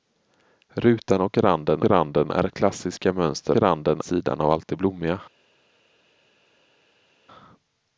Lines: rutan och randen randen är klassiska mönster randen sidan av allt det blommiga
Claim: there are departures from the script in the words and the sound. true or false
false